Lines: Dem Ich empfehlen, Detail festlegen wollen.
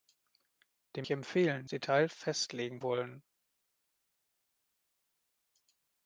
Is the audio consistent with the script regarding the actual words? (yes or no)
yes